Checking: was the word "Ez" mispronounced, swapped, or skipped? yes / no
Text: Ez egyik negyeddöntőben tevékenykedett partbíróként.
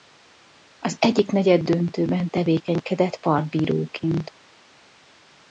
yes